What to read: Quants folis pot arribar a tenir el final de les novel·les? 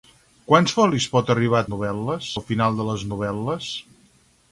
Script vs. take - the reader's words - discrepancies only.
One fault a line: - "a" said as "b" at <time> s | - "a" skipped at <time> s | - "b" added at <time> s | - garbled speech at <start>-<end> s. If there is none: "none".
- "tenir" said as "novel·les" at 1.7 s